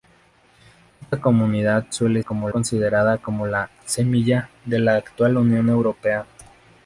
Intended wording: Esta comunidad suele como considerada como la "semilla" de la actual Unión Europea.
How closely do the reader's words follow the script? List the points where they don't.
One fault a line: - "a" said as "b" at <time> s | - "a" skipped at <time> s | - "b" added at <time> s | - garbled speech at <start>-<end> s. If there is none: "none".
none